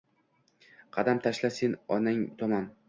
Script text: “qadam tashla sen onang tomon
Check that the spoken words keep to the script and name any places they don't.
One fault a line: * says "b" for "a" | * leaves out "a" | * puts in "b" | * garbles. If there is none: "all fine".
all fine